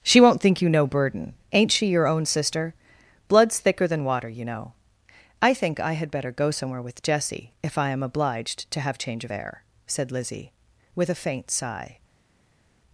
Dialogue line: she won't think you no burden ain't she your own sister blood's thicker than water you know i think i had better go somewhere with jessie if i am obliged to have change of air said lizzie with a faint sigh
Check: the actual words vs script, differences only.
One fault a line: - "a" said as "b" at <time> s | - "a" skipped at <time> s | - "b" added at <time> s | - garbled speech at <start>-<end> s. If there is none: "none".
none